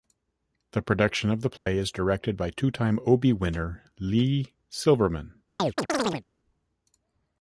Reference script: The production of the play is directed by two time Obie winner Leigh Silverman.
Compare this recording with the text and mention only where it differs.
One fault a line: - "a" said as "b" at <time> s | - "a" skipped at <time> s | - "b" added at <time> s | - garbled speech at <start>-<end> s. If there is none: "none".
none